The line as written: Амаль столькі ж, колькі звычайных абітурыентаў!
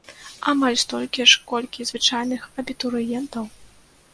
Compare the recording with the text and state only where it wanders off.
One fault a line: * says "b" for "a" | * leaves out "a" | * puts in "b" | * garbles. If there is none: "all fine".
all fine